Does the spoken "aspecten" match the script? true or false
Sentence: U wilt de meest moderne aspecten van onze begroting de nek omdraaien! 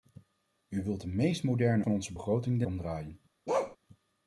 false